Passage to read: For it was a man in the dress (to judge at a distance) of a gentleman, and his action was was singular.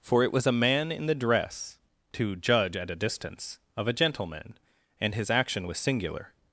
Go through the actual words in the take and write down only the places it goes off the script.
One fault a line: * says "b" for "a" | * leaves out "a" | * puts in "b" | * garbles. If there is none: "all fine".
* leaves out "was"